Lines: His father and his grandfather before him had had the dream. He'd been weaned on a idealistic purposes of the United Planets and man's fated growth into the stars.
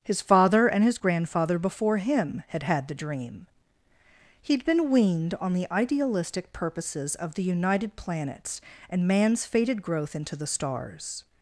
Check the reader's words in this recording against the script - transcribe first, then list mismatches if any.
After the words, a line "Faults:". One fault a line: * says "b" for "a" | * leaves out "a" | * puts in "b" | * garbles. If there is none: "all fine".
His father and his grandfather before him had had the dream. He'd been weaned on the idealistic purposes of the United Planets and man's fated growth into the stars.
Faults:
* says "the" for "a"